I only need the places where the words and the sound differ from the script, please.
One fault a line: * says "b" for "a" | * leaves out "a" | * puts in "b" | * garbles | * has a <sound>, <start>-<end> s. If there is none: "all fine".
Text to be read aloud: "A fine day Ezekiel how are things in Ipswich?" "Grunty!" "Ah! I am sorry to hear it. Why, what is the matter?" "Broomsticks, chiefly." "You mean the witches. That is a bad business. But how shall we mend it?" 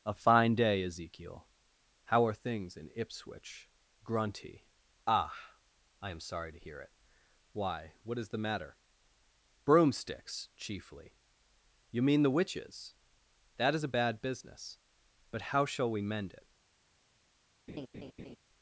* has a laugh, 17.7-18.4 s